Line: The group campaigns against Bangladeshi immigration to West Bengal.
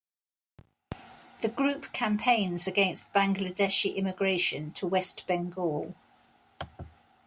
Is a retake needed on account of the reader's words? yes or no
no